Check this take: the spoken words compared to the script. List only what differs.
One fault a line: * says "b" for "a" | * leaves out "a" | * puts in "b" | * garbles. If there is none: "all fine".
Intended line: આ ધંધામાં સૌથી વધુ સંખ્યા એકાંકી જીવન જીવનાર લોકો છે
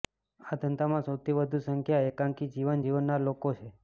all fine